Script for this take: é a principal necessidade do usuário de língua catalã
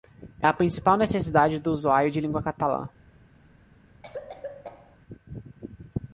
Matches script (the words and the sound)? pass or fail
fail